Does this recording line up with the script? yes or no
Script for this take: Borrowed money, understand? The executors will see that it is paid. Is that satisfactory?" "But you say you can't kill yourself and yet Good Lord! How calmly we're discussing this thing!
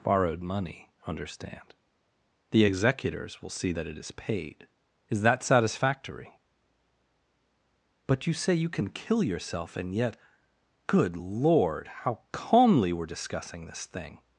no